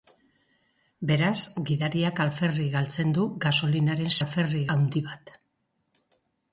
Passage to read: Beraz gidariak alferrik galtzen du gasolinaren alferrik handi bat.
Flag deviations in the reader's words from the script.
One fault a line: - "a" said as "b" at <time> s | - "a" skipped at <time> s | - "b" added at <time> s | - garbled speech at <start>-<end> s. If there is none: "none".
none